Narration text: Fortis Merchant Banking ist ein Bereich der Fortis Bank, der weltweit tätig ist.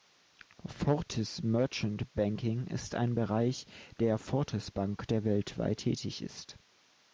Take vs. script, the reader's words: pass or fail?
pass